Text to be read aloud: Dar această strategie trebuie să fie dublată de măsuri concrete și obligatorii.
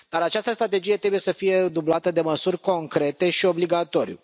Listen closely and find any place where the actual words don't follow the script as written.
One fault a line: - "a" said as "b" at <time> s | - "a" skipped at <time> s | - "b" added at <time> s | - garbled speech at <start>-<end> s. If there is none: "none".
none